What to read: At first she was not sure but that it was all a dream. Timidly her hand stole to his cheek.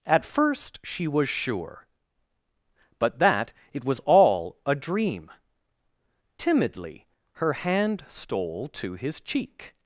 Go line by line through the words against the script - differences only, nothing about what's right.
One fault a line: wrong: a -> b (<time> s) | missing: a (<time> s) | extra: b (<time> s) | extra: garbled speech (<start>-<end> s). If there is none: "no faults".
missing: not (1.3 s)